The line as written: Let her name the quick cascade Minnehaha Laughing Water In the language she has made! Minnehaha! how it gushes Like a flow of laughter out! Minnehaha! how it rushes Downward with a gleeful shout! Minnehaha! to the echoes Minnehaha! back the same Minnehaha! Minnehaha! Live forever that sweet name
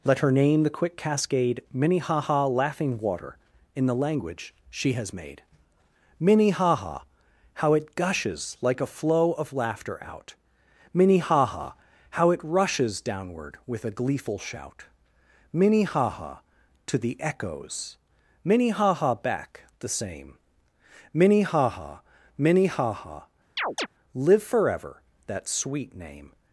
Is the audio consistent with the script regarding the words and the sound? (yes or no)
no